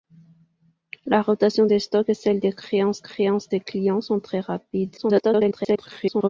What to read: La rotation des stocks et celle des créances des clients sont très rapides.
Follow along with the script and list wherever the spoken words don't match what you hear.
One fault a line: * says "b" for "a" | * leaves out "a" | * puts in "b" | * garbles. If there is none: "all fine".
* puts in "créances"
* garbles